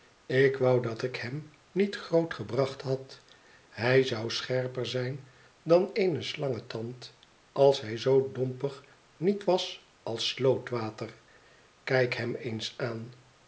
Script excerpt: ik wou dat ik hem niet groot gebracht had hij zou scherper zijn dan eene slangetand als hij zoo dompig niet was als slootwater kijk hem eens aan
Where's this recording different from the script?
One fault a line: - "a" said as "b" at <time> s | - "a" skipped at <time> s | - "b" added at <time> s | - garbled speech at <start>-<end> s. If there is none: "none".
none